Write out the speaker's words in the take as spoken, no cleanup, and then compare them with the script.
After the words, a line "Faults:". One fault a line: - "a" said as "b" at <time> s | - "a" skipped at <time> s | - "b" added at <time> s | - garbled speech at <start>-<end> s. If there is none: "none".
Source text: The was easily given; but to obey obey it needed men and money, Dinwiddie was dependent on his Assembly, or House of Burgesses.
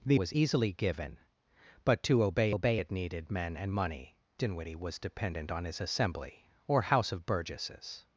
The was easily given; but to obey obey it needed men and money, Dinwiddie was dependent on his Assembly, or House of Burgesses.
Faults:
none